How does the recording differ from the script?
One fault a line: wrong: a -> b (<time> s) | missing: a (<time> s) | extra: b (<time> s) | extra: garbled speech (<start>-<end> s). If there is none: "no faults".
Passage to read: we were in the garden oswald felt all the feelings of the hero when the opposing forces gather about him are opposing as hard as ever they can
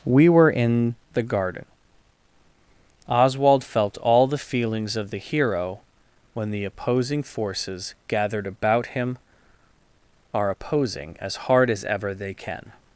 wrong: gather -> gathered (8.1 s)